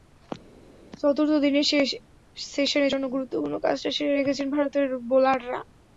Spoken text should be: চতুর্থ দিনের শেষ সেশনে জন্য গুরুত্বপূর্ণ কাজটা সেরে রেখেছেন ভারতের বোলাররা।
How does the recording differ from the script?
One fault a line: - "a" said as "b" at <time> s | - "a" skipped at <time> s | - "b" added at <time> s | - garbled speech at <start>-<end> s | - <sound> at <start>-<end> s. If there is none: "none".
none